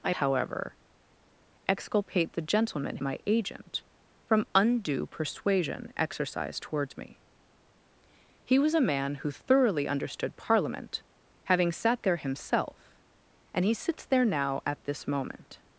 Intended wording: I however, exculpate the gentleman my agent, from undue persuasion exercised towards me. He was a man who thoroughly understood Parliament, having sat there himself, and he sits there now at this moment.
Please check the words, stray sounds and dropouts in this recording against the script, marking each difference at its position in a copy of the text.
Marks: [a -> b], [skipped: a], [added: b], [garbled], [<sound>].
I however, exculpate the gentleman my agent, from undue persuasion exercised towards me. He was a man who thoroughly understood Parliament, having sat there himself, and he sits there now at this moment.